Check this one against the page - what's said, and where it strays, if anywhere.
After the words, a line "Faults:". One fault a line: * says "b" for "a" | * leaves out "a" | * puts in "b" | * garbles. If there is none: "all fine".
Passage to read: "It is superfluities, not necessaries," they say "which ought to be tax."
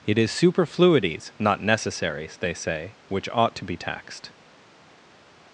"It is superfluities, not necessaries," they say "which ought to be taxed."
Faults:
* says "taxed" for "tax"